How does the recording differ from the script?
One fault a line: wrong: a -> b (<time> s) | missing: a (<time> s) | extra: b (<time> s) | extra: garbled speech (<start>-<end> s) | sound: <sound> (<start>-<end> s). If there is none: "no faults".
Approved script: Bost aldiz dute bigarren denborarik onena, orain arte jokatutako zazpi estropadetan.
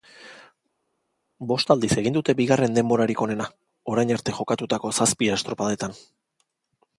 extra: egin (2.0 s)